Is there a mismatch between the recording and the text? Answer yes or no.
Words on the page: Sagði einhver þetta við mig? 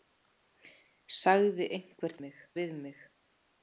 yes